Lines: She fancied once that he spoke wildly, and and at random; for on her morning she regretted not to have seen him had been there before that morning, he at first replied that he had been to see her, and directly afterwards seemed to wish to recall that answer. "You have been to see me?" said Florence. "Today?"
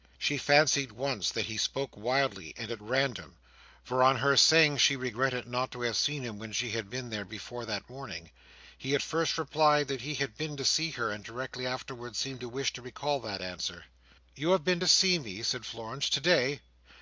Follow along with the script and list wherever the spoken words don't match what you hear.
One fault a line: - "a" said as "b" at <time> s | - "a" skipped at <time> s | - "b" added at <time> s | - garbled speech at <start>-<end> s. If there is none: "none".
- "and" skipped at 2.7 s
- "morning" said as "saying" at 4.4 s
- "when she" added at 6.4 s